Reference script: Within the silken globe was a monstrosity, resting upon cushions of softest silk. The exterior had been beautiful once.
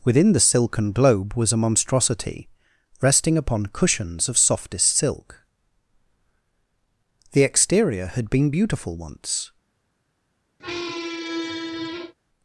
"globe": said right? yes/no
yes